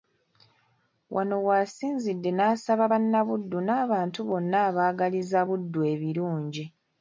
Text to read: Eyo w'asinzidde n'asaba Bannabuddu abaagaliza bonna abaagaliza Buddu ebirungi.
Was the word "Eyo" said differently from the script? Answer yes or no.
yes